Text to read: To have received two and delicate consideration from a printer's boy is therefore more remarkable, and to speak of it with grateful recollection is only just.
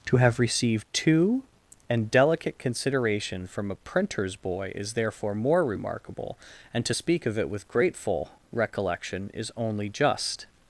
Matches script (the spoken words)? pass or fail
pass